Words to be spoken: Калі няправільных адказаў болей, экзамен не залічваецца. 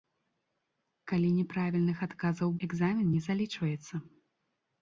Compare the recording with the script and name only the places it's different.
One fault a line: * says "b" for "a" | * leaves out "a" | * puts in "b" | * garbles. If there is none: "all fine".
* leaves out "болей"